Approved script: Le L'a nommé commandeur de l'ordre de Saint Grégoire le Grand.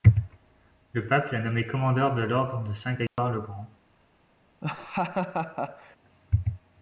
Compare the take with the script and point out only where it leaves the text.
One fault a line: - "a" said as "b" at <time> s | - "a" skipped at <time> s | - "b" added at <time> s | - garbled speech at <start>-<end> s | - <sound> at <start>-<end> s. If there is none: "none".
- "Pape" added at 1.1 s
- dropout at 3.1-3.2 s
- laugh at 4.6-6.0 s